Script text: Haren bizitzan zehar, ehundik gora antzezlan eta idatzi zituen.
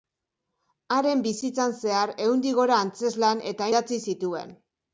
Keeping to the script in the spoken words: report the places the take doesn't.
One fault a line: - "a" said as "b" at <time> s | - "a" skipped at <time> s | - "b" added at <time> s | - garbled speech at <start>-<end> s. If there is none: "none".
none